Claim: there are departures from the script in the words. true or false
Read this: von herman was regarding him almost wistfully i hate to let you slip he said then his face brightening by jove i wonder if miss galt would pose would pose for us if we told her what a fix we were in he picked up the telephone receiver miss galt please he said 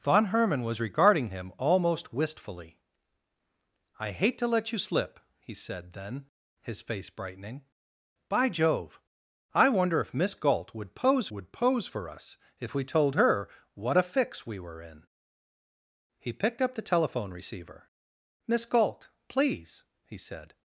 false